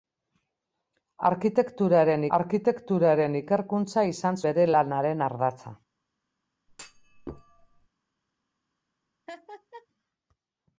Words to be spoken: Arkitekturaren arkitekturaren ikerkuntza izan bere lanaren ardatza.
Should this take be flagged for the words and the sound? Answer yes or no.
yes